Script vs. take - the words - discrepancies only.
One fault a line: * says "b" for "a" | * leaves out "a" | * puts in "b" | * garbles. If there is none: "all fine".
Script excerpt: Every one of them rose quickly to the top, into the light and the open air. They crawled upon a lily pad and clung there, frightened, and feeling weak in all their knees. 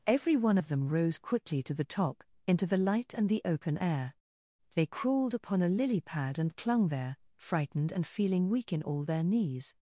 all fine